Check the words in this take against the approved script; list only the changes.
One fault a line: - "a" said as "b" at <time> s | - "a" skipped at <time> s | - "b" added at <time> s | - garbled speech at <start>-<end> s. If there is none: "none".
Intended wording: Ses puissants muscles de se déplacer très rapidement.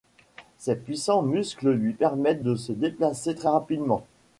- "lui permettent" added at 1.7 s